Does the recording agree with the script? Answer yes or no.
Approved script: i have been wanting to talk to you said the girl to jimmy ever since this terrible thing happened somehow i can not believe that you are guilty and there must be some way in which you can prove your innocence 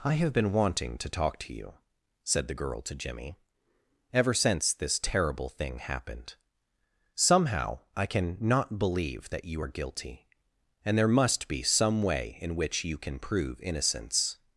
no